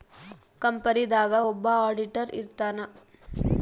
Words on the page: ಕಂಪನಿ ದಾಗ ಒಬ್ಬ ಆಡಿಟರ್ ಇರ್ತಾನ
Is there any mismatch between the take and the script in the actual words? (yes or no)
no